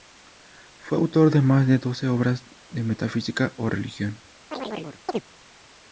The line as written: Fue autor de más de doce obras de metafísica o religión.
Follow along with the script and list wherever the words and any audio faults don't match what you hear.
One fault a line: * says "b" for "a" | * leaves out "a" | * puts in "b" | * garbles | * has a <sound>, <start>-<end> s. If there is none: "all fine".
* has a chirp, 4.5-5.2 s